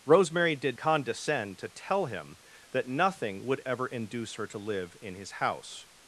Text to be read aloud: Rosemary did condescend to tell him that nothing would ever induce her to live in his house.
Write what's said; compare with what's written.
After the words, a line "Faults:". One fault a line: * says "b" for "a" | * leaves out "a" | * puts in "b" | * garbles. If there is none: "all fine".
Rosemary did condescend to tell him that nothing would ever induce her to live in his house.
Faults:
all fine